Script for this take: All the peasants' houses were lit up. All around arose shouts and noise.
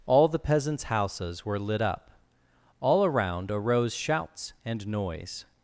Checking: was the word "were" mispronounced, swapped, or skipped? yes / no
no